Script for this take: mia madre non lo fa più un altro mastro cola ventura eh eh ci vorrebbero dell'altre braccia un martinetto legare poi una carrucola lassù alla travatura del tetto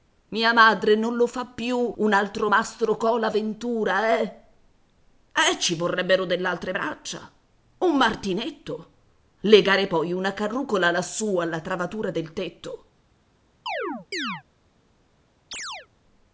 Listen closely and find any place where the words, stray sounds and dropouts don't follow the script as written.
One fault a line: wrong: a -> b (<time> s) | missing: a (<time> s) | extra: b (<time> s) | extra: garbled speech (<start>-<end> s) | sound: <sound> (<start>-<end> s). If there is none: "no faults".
sound: chirp (13.7-14.4 s)
sound: chirp (15.5-15.9 s)